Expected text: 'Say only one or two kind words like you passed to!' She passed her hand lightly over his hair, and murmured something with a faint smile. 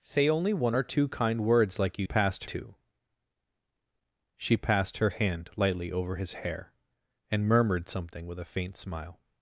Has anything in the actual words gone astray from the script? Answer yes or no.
no